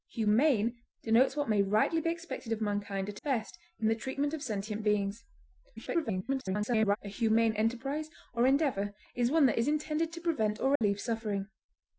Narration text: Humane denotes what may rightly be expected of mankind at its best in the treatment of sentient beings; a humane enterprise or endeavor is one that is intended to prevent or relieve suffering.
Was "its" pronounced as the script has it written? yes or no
no